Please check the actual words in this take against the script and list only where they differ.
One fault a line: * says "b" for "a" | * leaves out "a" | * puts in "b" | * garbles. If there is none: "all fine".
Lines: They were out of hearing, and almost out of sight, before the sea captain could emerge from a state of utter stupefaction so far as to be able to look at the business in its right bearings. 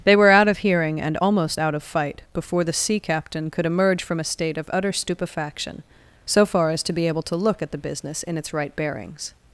* says "fight" for "sight"